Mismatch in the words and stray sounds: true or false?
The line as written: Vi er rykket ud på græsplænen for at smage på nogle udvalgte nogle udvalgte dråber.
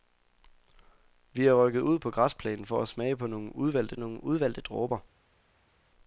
false